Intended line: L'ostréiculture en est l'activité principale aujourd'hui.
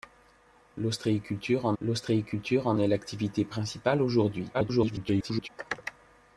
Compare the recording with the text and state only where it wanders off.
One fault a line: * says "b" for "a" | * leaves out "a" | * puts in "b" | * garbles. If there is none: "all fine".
* puts in "l'ostréiculture en"
* garbles